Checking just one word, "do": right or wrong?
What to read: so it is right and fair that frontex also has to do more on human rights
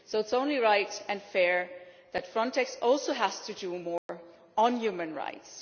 right